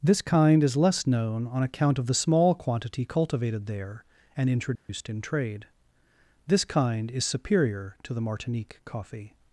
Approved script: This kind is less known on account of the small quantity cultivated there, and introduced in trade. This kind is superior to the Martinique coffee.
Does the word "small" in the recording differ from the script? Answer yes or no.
no